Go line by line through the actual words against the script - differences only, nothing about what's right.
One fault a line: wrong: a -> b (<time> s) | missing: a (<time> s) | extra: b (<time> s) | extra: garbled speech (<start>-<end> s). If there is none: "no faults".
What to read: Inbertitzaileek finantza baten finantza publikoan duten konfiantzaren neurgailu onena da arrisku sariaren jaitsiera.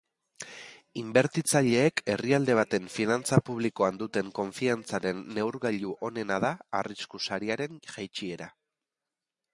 wrong: finantza -> herrialde (2.1 s)